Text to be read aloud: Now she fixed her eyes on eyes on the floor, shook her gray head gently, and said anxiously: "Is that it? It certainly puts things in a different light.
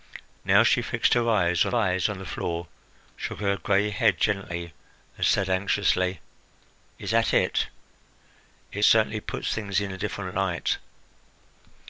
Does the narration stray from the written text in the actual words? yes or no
no